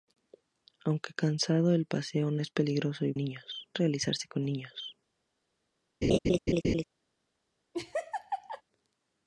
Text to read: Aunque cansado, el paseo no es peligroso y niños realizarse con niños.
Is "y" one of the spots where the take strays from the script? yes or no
no